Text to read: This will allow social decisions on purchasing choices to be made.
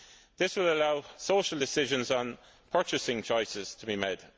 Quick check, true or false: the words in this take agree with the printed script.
true